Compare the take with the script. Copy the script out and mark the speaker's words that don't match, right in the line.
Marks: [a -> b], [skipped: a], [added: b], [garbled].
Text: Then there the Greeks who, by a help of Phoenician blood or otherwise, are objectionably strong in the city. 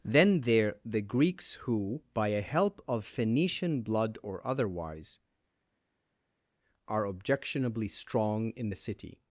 Then there the Greeks who, by a help of Phoenician blood or otherwise, are objectionably strong in the city.